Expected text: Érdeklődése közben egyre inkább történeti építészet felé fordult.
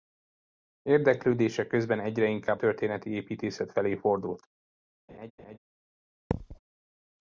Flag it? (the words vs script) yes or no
no